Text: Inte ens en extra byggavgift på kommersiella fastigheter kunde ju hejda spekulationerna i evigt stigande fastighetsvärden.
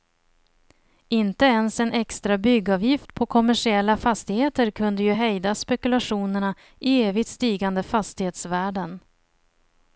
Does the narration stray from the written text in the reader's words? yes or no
no